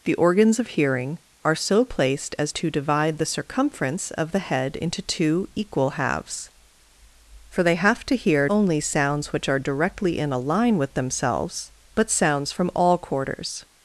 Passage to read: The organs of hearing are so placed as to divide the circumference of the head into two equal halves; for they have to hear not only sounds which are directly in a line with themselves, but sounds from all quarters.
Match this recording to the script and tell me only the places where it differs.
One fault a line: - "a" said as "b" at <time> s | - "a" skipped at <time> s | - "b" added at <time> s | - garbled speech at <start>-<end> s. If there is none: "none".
- "not" skipped at 8.5 s